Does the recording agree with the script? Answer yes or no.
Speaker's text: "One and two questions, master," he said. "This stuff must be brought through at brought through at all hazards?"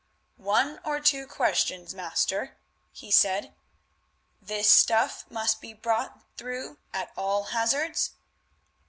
no